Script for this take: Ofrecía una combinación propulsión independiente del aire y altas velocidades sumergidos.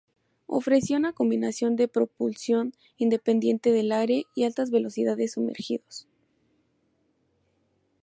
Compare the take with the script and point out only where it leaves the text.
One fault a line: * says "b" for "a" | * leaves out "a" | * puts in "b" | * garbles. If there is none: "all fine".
* puts in "de"